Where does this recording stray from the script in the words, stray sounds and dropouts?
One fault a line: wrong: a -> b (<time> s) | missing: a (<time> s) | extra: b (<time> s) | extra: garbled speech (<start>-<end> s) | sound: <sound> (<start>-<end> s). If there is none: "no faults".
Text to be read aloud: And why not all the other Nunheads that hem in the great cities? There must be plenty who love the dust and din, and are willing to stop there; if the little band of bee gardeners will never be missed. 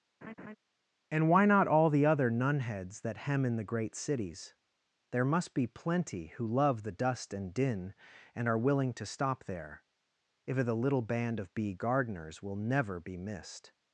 sound: laugh (0.2-0.6 s)